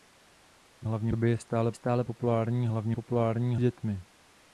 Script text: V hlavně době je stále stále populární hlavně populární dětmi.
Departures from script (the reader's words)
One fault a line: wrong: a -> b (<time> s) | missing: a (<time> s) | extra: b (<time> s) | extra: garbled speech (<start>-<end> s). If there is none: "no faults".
no faults